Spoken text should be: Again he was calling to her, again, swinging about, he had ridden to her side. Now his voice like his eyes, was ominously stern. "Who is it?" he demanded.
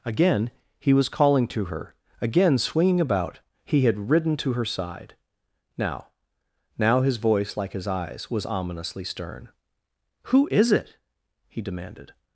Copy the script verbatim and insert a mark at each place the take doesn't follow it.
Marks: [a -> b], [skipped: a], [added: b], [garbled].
Again he was calling to her, again, swinging about, he had ridden to her side. Now [added: Now] his voice like his eyes, was ominously stern. "Who is it?" he demanded.